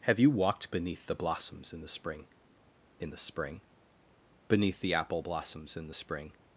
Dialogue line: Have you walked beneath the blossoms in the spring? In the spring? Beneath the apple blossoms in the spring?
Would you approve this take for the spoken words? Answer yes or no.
yes